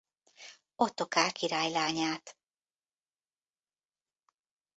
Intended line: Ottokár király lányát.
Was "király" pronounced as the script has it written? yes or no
yes